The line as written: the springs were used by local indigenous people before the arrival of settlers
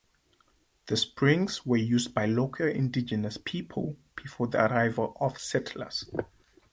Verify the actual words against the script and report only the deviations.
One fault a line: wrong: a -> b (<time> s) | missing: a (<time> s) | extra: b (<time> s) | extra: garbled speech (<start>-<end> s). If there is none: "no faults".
no faults